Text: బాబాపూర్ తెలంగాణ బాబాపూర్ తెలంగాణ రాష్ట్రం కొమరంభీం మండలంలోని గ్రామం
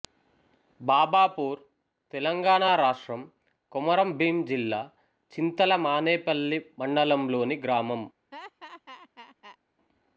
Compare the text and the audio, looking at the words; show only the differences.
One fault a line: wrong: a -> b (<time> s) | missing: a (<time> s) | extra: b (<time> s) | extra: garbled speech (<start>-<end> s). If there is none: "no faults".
wrong: బాబాపూర్ తెలంగాణ రాష్ట్రం కొమరంభీం -> రాష్ట్రం కొమరంభీం జిల్లా చింతల మానేపల్లి (2.8 s)